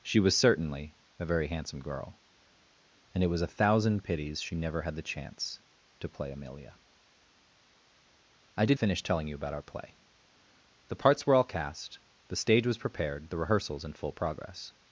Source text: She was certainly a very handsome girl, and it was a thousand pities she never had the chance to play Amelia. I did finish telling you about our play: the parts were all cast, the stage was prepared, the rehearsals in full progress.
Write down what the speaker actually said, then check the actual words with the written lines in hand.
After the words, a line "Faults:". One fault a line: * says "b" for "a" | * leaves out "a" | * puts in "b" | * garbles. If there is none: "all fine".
She was certainly a very handsome girl, and it was a thousand pities she never had the chance to play Amelia. I did finish telling you about our play: the parts were all cast, the stage was prepared, the rehearsals in full progress.
Faults:
all fine